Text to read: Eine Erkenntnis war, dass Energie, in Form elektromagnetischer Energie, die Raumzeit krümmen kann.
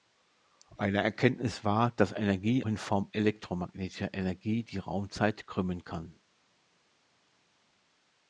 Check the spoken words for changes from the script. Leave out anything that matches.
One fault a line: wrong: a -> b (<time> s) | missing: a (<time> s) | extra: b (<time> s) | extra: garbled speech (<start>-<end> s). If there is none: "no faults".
no faults